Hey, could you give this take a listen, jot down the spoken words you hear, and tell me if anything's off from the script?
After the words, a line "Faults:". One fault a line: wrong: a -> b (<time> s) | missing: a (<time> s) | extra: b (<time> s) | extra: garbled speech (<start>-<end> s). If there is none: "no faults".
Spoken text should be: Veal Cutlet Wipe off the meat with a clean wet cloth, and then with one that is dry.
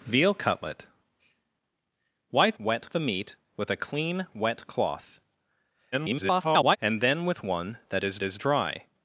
Veal Cutlet Wipe wet the meat with a clean wet cloth, [garbled] and then with one that is is dry.
Faults:
wrong: off -> wet (2.6 s)
extra: garbled speech (5.9-6.8 s)
extra: is (8.2 s)